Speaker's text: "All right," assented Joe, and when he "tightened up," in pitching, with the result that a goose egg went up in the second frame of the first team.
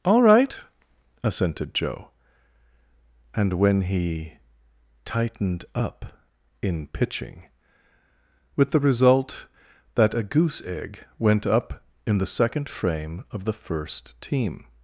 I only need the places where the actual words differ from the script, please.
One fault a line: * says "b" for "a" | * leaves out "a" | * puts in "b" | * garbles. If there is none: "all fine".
all fine